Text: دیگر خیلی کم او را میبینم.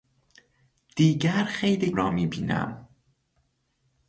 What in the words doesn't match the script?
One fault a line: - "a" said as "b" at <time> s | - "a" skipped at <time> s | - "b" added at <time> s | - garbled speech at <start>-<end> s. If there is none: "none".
- "کم او" skipped at 1.9 s